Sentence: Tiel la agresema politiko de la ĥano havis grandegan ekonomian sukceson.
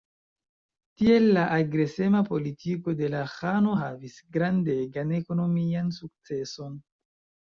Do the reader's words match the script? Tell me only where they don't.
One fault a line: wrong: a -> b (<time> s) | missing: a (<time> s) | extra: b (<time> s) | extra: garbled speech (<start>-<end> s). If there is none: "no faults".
no faults